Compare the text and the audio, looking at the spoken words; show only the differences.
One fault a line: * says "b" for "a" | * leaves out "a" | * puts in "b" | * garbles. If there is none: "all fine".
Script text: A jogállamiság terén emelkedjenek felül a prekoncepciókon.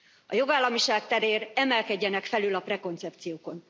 all fine